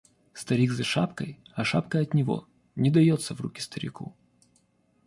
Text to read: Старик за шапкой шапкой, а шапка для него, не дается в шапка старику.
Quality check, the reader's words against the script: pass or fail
fail